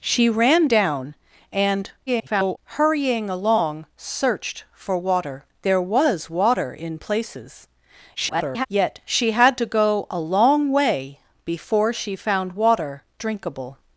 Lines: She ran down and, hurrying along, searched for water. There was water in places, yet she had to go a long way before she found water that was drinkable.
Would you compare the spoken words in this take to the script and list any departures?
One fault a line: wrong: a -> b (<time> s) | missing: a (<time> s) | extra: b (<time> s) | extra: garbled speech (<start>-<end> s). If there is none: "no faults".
extra: garbled speech (2.1-2.6 s)
extra: garbled speech (8.2-8.7 s)
missing: that was (13.0 s)